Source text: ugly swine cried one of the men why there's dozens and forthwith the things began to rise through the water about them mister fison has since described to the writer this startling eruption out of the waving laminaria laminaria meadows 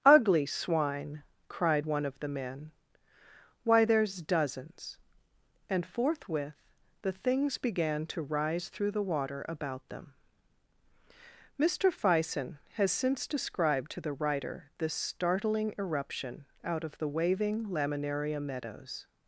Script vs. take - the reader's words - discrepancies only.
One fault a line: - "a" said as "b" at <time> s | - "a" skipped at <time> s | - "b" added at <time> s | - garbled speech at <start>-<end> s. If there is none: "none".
- "laminaria" skipped at 18.4 s